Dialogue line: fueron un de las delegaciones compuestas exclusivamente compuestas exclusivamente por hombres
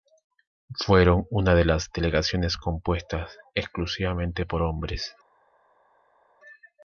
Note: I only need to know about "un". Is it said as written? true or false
false